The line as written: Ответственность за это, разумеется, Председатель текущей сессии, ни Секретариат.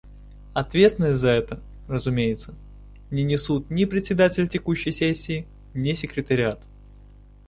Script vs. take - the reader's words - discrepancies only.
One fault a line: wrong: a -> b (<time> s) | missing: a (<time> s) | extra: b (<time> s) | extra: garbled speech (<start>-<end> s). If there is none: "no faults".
extra: не несут ни (3.1 s)